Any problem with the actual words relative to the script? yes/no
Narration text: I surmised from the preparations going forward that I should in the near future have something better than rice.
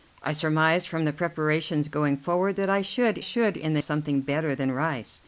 yes